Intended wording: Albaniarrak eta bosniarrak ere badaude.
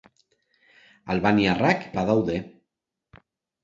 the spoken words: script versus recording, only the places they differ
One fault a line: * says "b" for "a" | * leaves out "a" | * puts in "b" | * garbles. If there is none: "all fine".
* leaves out "eta bosniarrak ere"